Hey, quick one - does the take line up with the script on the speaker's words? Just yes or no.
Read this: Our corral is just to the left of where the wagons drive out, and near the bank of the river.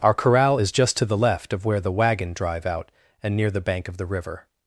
no